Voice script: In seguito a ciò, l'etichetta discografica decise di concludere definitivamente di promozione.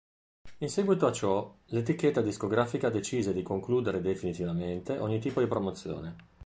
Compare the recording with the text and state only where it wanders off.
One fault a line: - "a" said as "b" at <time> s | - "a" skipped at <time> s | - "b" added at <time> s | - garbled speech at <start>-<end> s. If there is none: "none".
- "ogni tipo" added at 5.0 s